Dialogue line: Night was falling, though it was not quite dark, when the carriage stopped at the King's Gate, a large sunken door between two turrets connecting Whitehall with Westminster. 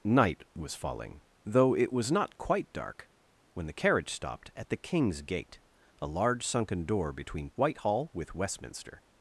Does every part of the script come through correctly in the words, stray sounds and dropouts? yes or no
no